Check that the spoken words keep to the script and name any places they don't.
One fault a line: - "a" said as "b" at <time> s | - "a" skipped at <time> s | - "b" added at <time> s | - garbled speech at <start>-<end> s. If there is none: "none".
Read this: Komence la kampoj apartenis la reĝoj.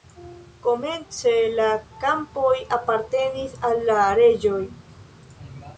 - "al" added at 3.7 s